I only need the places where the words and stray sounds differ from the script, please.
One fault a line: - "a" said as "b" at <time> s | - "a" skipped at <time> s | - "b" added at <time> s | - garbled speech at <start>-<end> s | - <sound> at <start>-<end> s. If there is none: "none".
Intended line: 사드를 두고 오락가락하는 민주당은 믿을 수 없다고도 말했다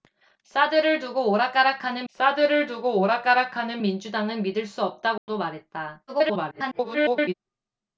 - "사드를 두고 오락가락하는" added at 2.2 s
- dropout at 5.2-5.3 s
- garbled speech at 6.1-7.3 s